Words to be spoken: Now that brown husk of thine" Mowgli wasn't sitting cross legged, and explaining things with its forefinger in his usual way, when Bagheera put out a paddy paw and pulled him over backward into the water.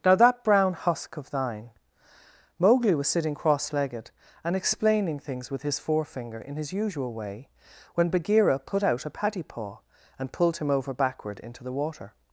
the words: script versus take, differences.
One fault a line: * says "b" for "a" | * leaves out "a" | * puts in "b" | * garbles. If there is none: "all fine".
* says "was" for "wasn't"
* says "his" for "its"